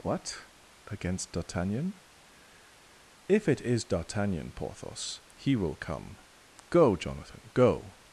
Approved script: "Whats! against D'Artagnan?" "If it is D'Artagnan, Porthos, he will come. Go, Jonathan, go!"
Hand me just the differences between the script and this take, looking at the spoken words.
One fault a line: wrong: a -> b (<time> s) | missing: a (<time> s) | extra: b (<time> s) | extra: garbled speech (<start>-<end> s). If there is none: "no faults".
wrong: Whats -> What (0.0 s)